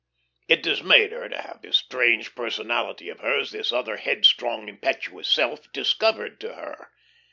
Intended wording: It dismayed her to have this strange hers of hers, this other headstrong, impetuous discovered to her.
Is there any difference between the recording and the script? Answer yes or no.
yes